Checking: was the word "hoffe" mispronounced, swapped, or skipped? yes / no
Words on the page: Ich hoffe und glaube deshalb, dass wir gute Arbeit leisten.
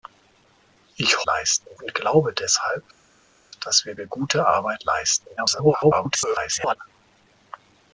yes